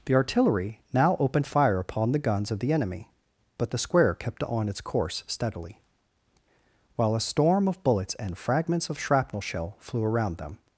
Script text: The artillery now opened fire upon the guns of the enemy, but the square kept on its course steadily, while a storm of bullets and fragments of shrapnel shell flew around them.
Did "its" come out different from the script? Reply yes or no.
no